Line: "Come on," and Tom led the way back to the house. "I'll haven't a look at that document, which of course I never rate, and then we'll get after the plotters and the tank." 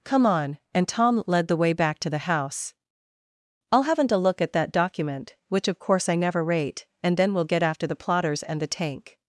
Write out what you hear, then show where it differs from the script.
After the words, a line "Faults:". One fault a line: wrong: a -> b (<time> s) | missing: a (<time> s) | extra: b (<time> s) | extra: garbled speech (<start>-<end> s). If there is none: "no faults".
"Come on," and Tom led the way back to the house. "I'll haven't a look at that document, which of course I never rate, and then we'll get after the plotters and the tank."
Faults:
no faults